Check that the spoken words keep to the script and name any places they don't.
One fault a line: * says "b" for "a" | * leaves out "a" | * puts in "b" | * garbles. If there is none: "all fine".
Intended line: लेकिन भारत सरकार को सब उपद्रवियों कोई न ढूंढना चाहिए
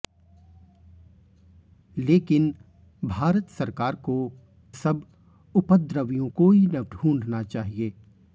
all fine